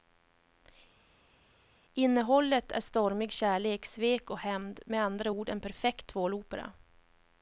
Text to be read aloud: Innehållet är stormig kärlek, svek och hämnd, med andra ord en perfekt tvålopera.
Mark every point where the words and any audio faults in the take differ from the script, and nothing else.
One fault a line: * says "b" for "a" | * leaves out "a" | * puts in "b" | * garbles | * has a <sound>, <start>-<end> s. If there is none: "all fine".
all fine